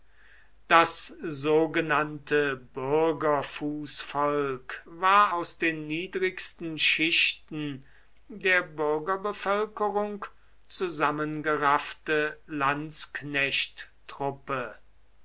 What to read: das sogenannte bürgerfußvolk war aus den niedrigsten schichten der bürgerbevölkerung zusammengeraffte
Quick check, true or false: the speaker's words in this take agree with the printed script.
true